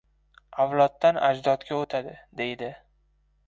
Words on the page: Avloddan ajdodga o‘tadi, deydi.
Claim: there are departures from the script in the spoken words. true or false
false